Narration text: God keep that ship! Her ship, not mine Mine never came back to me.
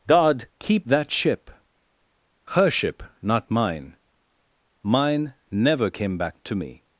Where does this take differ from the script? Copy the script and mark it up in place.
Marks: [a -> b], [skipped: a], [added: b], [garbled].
God keep that ship! Her ship, not mine Mine never came back to me.